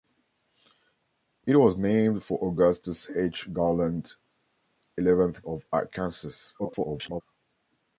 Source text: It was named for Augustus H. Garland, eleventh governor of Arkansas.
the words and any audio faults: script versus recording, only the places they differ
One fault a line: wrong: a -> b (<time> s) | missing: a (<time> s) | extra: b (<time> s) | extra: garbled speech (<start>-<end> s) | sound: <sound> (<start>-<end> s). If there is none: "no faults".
missing: governor (5.4 s)
extra: garbled speech (6.6-7.2 s)